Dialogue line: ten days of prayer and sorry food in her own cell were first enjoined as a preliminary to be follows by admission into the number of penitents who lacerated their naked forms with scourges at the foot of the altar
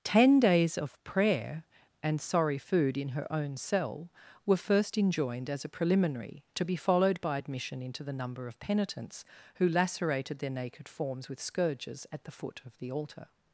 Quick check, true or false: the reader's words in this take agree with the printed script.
false